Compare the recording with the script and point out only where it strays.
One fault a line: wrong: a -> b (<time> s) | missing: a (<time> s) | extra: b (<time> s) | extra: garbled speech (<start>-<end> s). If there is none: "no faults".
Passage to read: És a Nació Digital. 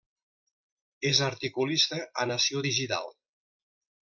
extra: articulista (1.3 s)